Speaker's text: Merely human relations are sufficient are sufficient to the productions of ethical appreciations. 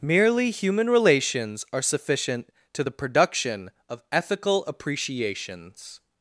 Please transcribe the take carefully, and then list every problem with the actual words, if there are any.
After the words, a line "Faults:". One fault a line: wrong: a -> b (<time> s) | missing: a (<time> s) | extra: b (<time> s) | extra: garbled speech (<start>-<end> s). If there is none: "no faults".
Merely human relations are sufficient to the production of ethical appreciations.
Faults:
missing: are sufficient (2.5 s)
wrong: productions -> production (2.9 s)